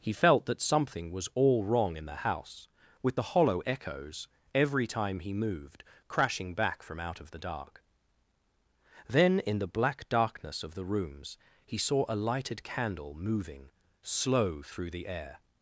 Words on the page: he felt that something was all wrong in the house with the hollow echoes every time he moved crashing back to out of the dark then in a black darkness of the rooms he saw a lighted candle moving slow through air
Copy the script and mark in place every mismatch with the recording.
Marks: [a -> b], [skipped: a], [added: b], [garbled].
he felt that something was all wrong in the house with the hollow echoes every time he moved crashing back [to -> from] out of the dark then in [a -> the] black darkness of the rooms he saw a lighted candle moving slow through [added: the] air